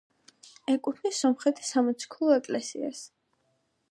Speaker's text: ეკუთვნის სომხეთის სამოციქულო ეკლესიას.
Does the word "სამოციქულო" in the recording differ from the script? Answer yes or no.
no